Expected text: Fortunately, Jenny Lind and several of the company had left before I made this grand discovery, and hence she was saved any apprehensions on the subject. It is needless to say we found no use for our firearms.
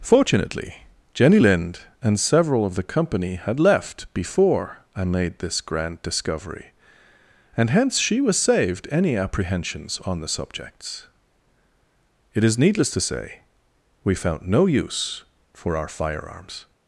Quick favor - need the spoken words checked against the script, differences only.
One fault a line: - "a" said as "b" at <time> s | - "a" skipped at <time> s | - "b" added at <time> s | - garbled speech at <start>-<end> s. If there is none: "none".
- "subject" said as "subjects" at 10.3 s